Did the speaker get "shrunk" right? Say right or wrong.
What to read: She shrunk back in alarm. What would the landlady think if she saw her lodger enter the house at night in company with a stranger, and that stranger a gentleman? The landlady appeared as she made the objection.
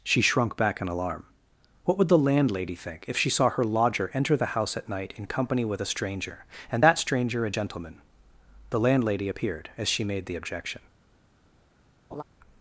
right